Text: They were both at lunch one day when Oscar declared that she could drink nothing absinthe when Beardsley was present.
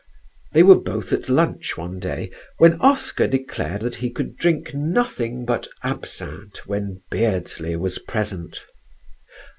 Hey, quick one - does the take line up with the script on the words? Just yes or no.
no